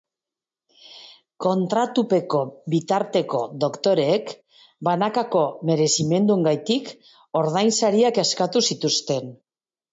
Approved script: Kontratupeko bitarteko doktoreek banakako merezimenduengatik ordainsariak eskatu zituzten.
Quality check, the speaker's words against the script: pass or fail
pass